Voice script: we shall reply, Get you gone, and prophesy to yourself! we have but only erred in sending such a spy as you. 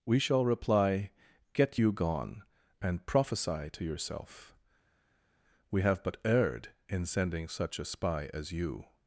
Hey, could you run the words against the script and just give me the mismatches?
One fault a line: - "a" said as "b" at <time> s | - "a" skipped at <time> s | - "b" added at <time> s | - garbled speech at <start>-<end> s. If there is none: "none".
- "only" skipped at 6.2 s